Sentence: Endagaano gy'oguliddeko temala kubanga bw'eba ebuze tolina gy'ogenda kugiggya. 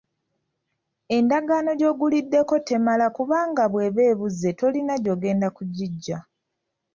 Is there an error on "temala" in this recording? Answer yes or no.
no